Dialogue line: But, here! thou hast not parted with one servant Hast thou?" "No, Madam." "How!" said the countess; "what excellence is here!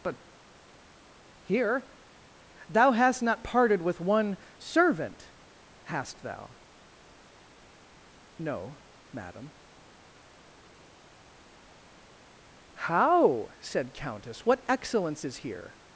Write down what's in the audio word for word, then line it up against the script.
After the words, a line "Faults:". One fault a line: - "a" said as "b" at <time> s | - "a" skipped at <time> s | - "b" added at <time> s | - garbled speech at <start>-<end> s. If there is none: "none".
But, here! thou hast not parted with one servant Hast thou?" "No, Madam." "How!" said countess; "what excellence is here!
Faults:
- "the" skipped at 13.9 s